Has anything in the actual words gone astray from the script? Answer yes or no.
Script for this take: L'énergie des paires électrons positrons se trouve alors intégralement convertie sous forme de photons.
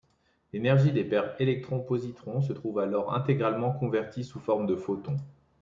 no